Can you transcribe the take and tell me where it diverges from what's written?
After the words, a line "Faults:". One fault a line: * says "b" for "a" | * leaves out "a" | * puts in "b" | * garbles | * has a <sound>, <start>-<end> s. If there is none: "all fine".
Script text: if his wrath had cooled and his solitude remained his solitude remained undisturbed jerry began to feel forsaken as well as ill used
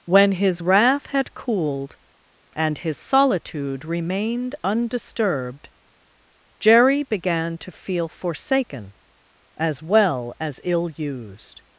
when his wrath had cooled and his solitude remained undisturbed jerry began to feel forsaken as well as ill used
Faults:
* says "when" for "if"
* leaves out "his solitude remained"